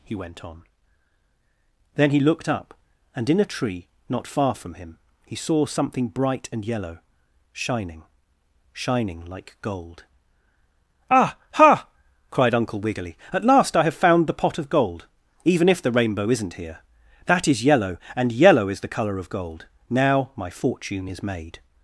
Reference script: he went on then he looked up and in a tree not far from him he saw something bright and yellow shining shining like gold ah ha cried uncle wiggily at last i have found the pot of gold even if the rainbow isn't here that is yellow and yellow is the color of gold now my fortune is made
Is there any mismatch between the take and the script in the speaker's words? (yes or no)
no